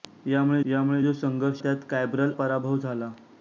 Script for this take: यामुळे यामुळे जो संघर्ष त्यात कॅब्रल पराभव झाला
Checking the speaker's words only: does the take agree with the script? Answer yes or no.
yes